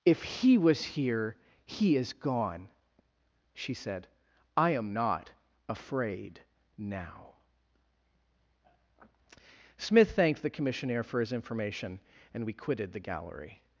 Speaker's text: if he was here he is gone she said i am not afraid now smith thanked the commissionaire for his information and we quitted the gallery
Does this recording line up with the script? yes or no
yes